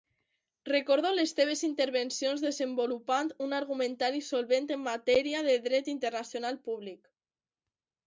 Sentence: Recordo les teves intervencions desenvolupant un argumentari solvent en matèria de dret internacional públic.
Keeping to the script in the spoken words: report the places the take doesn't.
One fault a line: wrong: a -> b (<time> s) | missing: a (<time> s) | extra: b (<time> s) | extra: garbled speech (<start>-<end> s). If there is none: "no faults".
no faults